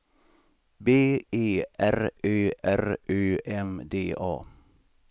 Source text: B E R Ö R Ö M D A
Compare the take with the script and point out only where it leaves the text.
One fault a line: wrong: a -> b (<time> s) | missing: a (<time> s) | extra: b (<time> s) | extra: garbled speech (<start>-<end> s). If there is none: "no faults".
no faults